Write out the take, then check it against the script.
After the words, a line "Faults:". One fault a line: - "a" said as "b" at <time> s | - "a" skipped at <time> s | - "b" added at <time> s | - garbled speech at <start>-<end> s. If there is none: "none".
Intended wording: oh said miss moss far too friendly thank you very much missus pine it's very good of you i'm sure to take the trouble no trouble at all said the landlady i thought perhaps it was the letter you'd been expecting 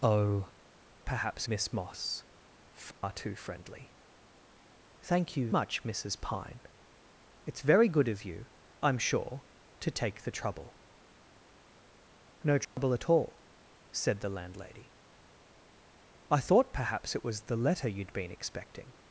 oh perhaps miss moss far too friendly thank you much missus pine it's very good of you i'm sure to take the trouble no trouble at all said the landlady i thought perhaps it was the letter you'd been expecting
Faults:
- "said" said as "perhaps" at 1.1 s
- "very" skipped at 5.5 s